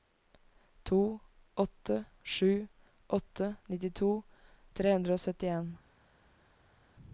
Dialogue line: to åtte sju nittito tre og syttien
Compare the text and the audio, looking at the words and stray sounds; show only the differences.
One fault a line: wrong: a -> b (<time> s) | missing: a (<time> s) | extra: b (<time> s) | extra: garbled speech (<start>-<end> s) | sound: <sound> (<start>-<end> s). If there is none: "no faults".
extra: åtte (3.1 s)
extra: hundre (4.9 s)